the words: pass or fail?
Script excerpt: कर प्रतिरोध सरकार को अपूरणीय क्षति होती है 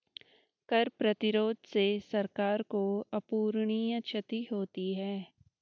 fail